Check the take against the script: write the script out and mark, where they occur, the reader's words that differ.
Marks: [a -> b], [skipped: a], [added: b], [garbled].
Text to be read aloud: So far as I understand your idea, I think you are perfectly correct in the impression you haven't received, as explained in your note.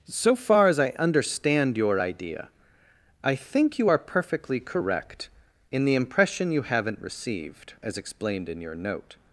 So far as I understand your idea, I think you are perfectly correct in the impression you haven't received, as explained in your note.